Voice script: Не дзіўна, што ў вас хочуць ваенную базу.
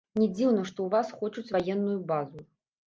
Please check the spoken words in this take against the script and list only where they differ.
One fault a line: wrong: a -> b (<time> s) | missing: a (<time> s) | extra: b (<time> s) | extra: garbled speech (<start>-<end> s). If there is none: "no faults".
no faults